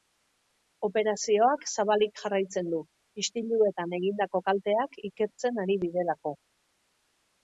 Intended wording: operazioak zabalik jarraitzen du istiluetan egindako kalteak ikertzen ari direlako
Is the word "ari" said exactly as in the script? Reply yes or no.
yes